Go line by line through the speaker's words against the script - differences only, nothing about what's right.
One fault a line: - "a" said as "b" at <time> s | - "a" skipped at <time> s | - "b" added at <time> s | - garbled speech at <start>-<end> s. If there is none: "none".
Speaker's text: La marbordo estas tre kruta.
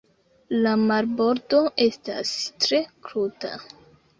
none